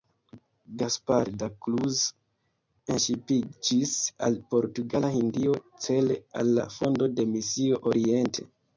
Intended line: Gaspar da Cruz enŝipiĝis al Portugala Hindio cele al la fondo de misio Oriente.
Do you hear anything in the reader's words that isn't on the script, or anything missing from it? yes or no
no